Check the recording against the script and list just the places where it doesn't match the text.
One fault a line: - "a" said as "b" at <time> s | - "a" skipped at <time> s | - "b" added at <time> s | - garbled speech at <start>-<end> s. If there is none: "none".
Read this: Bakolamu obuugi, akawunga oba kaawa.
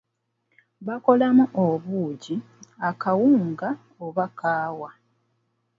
none